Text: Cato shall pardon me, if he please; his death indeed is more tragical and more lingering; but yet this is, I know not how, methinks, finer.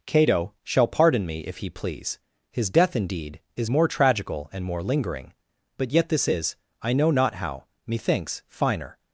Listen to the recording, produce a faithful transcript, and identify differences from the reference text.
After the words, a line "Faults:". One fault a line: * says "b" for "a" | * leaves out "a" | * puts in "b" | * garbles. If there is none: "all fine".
Cato shall pardon me, if he please; his death indeed is more tragical and more lingering; but yet this is, I know not how, methinks, finer.
Faults:
all fine